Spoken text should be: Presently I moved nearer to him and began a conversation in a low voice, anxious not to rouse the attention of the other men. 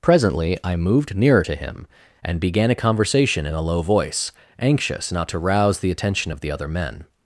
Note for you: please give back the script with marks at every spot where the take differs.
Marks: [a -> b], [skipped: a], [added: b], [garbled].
Presently I moved nearer to him and began a conversation in a low voice, anxious not to rouse the attention of the other men.